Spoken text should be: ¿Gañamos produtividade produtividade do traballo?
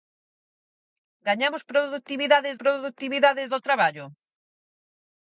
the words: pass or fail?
pass